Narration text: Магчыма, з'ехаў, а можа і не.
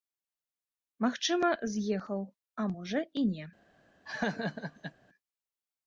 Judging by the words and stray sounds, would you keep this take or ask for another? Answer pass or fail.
fail